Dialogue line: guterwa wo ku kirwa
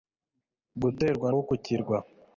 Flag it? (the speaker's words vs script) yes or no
no